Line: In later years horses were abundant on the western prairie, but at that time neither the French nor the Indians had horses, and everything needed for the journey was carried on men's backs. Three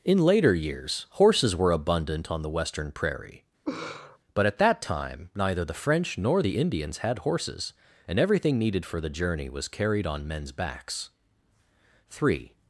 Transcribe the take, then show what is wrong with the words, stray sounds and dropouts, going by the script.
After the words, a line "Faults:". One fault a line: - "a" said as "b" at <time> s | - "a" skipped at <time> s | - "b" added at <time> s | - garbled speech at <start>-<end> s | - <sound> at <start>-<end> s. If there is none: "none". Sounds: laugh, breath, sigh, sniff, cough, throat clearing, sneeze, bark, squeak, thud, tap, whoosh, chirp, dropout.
In later years horses were abundant on the western prairie, but at that time neither the French nor the Indians had horses, and everything needed for the journey was carried on men's backs. Three
Faults:
- laugh at 3.7-4.2 s